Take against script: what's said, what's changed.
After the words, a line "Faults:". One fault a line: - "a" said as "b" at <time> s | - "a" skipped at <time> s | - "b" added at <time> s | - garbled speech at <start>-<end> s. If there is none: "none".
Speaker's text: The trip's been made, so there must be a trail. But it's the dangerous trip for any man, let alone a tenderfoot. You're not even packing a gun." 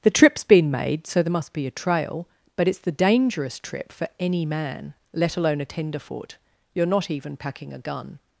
The trip's been made, so there must be a trail. But it's the dangerous trip for any man, let alone a tenderfoot. You're not even packing a gun."
Faults:
none